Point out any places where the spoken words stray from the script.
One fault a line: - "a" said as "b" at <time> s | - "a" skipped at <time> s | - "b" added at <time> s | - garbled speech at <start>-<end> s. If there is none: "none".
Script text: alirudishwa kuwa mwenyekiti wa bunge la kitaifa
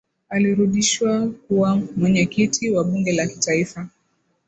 none